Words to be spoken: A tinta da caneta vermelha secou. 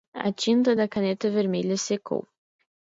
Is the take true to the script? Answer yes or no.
yes